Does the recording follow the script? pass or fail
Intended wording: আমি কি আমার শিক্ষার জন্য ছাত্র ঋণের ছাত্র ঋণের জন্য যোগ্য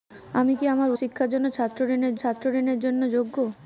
pass